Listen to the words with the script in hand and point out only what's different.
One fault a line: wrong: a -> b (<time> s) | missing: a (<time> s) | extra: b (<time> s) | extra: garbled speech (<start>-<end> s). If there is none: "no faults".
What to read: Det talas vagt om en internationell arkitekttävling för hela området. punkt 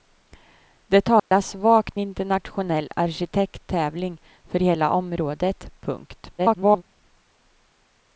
missing: om en (2.0 s)
extra: garbled speech (6.4-6.8 s)